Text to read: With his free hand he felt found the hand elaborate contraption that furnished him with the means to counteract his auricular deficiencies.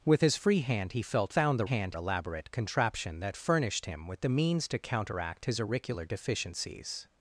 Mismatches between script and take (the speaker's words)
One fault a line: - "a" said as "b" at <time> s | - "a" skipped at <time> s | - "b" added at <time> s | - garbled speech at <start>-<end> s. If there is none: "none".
none